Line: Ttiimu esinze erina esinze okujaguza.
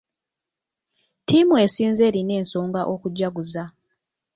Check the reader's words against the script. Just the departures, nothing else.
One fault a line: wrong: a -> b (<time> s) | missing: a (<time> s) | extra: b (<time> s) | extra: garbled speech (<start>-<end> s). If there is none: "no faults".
wrong: esinze -> ensonga (2.4 s)